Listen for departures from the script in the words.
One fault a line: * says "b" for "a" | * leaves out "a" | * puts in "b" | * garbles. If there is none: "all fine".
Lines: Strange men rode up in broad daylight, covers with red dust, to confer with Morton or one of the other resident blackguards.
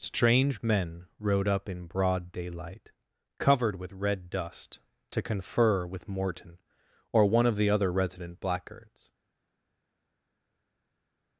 * says "covered" for "covers"